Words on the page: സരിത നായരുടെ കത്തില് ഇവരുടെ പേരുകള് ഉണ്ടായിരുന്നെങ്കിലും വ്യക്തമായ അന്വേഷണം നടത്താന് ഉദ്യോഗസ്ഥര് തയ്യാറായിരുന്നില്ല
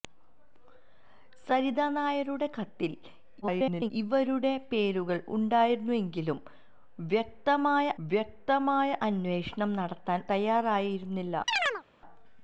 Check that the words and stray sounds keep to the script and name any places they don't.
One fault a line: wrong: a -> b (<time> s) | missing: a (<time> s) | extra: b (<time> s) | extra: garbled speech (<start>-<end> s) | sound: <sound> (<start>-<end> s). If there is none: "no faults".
extra: garbled speech (3.4-3.9 s)
extra: വ്യക്തമായ (8.0 s)
missing: ഉദ്യോഗസ്ഥര് (10.3 s)
sound: chirp (11.5-11.8 s)